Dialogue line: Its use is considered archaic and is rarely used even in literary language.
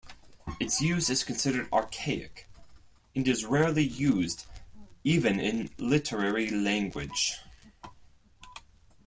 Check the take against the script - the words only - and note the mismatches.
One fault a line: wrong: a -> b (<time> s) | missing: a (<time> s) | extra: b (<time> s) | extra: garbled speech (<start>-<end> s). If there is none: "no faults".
no faults